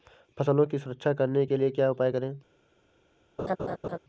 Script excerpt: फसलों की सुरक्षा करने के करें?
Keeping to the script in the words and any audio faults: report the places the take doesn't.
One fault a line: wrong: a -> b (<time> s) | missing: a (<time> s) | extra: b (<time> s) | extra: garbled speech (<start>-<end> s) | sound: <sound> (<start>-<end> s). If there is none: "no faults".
extra: लिए क्या उपाय (1.6 s)
sound: laugh (3.4-4.0 s)